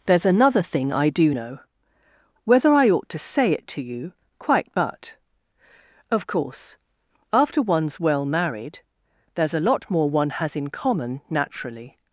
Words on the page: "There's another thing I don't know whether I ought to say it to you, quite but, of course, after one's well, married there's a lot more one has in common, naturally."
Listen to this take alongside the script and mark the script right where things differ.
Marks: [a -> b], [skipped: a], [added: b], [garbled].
"There's another thing I [don't -> do] know whether I ought to say it to you, quite but, of course, after one's well, married there's a lot more one has in common, naturally."